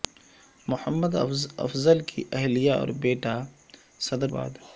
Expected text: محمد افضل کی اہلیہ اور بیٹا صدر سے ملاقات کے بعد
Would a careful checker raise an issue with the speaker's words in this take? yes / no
yes